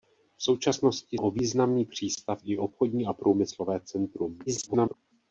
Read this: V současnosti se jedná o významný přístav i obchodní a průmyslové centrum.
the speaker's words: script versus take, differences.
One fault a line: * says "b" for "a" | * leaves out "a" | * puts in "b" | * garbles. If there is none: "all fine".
* leaves out "se jedná"
* garbles